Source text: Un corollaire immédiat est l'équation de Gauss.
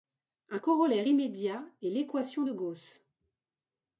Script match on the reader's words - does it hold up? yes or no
yes